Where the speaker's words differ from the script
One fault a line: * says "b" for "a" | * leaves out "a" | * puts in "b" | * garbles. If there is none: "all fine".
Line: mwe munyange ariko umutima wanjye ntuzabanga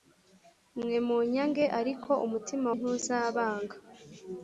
* leaves out "wanjye"